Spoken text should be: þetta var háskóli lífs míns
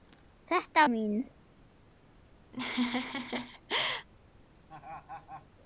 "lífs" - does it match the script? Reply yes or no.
no